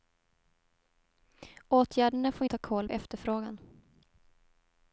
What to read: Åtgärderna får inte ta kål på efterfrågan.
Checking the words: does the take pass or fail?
fail